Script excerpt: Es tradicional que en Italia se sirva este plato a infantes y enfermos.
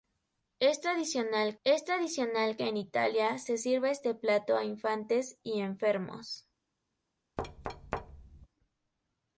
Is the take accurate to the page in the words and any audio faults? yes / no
no